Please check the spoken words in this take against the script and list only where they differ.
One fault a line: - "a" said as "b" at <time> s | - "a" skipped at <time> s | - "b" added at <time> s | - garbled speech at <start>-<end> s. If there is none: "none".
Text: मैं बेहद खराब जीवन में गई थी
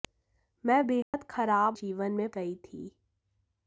none